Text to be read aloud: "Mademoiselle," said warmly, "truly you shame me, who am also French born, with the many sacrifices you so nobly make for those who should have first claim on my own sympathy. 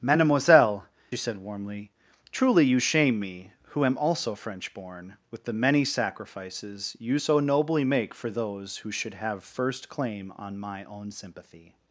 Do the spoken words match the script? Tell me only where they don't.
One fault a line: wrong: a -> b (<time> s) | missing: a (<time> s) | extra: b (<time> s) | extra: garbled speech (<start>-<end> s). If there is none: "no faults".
no faults